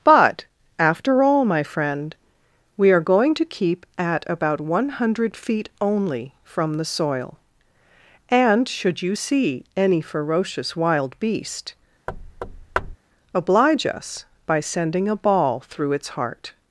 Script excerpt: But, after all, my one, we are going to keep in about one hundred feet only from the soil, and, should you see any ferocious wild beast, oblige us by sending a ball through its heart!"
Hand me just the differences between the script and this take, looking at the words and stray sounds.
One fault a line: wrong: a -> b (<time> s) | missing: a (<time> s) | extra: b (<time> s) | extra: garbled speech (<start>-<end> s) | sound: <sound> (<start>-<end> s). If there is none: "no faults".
wrong: one -> friend (1.6 s)
wrong: in -> at (4.0 s)
sound: thud (12.1-13.0 s)